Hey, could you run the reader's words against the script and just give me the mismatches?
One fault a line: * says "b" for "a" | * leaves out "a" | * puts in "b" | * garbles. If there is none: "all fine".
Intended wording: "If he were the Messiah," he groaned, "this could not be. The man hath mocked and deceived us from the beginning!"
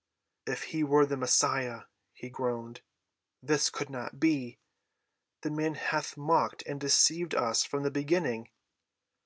all fine